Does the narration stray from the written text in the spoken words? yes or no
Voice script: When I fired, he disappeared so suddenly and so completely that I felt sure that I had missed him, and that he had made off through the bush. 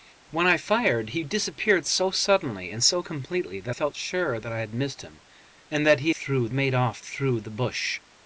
yes